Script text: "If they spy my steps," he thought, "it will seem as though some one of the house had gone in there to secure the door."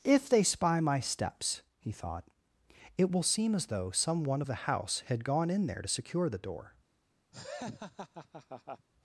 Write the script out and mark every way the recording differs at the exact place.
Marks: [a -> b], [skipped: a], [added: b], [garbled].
"If they spy my steps," he thought, "it will seem as though some one of the house had gone in there to secure the door."